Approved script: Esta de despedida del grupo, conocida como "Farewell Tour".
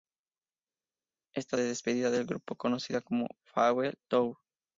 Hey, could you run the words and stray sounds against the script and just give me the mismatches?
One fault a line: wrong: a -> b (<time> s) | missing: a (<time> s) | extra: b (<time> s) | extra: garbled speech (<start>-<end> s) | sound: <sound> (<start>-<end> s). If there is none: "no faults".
no faults